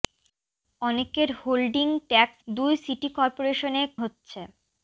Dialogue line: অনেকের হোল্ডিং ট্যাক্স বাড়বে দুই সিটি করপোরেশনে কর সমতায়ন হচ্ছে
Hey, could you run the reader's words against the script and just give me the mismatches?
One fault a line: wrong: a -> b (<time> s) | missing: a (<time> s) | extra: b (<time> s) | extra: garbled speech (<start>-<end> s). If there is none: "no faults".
missing: বাড়বে (2.4 s)
missing: কর সমতায়ন (3.8 s)